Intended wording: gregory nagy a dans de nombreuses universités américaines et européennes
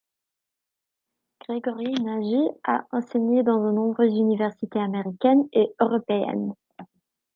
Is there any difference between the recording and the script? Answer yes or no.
yes